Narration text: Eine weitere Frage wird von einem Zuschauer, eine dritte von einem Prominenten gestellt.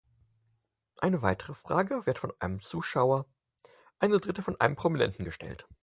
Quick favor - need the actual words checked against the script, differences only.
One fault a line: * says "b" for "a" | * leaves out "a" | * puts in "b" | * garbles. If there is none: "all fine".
all fine